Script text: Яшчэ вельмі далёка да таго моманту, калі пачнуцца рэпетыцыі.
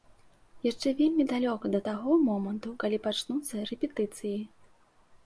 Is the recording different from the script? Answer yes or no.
no